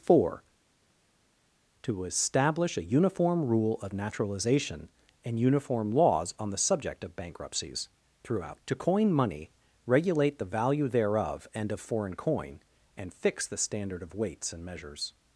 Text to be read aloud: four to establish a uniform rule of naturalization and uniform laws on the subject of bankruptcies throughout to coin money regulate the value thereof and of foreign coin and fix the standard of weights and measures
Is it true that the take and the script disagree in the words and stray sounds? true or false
false